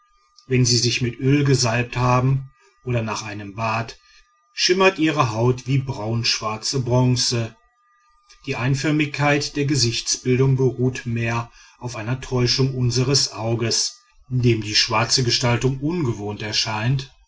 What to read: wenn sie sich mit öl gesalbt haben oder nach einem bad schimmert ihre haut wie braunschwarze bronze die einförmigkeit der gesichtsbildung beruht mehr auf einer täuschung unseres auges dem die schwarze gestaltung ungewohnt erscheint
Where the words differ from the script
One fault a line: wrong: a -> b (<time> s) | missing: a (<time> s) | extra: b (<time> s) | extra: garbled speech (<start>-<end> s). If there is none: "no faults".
no faults